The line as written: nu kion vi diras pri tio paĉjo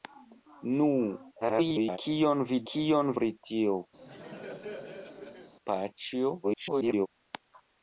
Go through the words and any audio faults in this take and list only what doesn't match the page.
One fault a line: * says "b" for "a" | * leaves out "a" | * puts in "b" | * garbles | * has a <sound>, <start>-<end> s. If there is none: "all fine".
* garbles
* says "kion" for "diras"
* has a laugh, 4.0-5.5 s
* garbles